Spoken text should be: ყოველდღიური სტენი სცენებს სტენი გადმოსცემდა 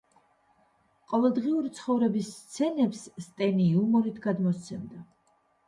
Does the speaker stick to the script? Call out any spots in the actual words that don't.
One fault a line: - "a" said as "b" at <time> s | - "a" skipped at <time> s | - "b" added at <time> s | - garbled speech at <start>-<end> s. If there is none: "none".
- "სტენი" said as "ცხოვრების" at 1.8 s
- "იუმორით" added at 3.8 s